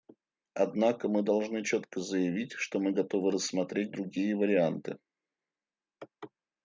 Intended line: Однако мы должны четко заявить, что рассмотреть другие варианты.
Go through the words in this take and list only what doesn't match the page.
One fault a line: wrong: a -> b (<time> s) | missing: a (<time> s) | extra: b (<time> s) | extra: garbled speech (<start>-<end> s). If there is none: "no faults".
extra: мы готовы (2.8 s)